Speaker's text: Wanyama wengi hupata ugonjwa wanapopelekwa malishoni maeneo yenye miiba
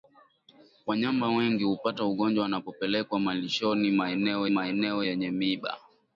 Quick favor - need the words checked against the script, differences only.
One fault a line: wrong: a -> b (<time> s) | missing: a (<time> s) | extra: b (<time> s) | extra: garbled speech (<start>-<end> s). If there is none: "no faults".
extra: maeneo (4.5 s)